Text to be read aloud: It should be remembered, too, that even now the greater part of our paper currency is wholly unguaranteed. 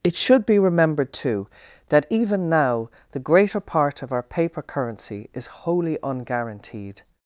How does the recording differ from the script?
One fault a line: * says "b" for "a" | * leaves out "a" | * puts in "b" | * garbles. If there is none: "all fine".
all fine